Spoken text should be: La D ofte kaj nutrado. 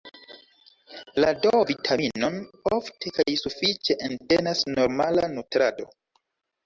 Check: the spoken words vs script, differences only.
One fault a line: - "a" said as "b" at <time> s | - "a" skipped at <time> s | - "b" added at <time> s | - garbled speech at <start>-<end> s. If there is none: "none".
- "vitaminon" added at 1.7 s
- "sufiĉe entenas normala" added at 3.4 s